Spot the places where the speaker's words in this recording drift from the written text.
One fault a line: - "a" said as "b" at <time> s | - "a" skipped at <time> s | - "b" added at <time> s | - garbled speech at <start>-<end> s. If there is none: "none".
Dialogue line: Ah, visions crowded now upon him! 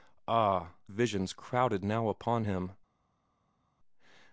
none